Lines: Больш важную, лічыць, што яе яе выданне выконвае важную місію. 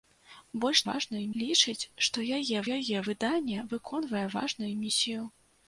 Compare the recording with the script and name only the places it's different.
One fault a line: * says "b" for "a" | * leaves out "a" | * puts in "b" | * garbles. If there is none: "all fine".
all fine